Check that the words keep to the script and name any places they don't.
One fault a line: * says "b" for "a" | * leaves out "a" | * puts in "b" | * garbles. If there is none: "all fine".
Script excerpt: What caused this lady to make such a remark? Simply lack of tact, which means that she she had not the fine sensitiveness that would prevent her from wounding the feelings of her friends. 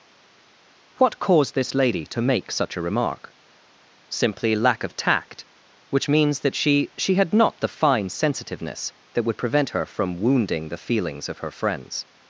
all fine